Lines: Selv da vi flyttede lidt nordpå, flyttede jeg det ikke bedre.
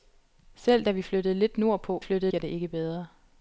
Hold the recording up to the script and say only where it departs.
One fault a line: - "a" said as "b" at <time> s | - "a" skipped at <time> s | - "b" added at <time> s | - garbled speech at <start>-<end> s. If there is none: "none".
none